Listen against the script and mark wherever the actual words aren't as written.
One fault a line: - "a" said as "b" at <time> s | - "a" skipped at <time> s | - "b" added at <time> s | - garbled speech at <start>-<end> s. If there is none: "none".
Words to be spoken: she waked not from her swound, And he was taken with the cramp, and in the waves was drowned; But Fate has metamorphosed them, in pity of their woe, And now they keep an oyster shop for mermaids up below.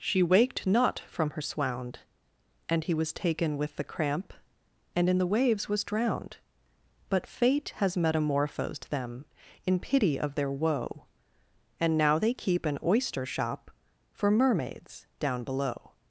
- "up" said as "down" at 15.2 s